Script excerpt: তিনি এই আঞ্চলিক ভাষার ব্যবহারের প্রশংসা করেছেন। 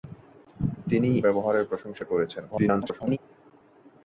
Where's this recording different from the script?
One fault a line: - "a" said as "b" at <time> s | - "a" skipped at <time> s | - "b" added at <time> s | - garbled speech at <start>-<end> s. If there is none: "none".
- "এই আঞ্চলিক ভাষার" skipped at 1.1 s
- garbled speech at 2.5-3.2 s